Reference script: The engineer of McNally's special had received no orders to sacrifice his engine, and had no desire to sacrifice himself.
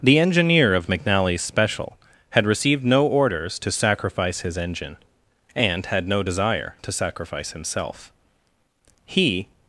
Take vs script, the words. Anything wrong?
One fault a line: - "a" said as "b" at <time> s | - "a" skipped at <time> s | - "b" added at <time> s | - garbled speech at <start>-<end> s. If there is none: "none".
- "He" added at 9.0 s